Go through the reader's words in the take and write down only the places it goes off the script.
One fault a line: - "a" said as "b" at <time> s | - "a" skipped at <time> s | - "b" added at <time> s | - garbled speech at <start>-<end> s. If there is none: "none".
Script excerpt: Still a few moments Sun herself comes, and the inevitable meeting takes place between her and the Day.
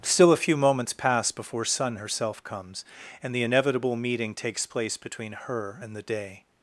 - "pass before" added at 0.9 s